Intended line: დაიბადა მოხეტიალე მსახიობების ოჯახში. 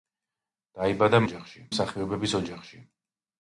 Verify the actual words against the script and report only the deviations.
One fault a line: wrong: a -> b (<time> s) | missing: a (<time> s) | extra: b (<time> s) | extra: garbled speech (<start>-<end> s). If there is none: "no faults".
wrong: მოხეტიალე -> ოჯახში (1.3 s)